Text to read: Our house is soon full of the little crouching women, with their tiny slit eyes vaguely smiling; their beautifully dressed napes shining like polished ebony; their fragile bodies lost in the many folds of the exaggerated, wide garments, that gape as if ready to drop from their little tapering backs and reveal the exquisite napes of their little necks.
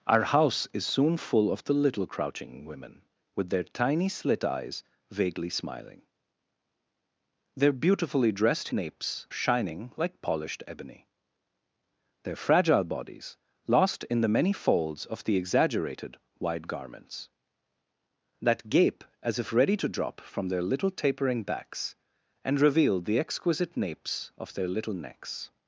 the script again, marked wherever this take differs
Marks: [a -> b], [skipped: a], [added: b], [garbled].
Our house is soon full of the little crouching women, with their tiny slit eyes vaguely smiling; their beautifully dressed napes shining like polished ebony; their fragile bodies lost in the many folds of the exaggerated, wide garments, that gape as if ready to drop from their little tapering backs and reveal the exquisite napes of their little necks.